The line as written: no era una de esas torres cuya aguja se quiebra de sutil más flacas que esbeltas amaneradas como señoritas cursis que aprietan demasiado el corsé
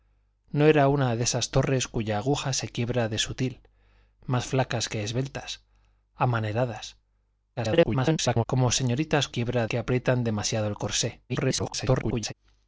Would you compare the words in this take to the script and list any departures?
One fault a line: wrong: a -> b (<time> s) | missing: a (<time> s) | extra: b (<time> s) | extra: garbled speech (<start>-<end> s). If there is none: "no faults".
extra: garbled speech (7.6-8.4 s)
wrong: cursis -> quiebra (9.3 s)
extra: garbled speech (11.3-12.3 s)